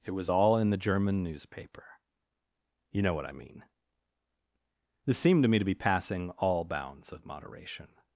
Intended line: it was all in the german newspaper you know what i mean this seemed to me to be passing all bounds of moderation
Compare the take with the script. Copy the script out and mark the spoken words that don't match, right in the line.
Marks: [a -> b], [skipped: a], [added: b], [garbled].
it was all in the german newspaper you know what i mean this seemed to me to be passing all bounds of moderation